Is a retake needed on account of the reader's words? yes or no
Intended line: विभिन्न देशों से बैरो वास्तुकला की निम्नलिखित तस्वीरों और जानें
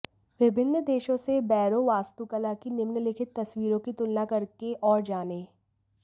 yes